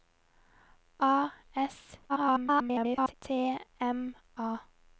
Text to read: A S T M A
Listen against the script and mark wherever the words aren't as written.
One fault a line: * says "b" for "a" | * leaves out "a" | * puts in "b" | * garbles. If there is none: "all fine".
* garbles